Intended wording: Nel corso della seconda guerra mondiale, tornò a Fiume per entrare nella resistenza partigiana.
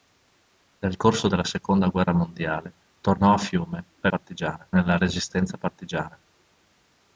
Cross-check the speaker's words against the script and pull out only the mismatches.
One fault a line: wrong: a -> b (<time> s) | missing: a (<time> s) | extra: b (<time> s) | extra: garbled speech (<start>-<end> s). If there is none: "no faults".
wrong: entrare -> partigiana (4.1 s)